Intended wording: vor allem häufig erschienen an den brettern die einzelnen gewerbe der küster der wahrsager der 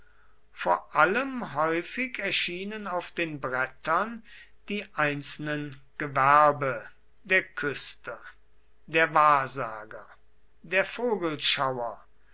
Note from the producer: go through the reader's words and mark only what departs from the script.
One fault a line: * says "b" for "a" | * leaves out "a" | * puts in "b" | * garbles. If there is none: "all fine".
* says "auf" for "an"